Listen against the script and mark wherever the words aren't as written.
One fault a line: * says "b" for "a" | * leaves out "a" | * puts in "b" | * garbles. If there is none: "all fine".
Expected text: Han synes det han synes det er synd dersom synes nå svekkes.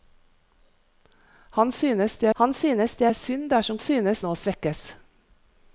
all fine